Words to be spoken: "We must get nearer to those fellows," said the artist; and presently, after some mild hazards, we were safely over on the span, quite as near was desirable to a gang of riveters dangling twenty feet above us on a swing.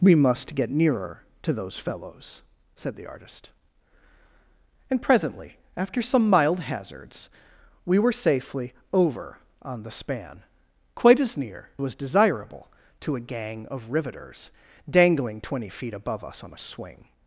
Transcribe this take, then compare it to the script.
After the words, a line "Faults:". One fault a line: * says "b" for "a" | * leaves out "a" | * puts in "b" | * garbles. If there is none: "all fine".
"We must get nearer to those fellows," said the artist; and presently, after some mild hazards, we were safely over on the span, quite as near was desirable to a gang of riveters dangling twenty feet above us on a swing.
Faults:
all fine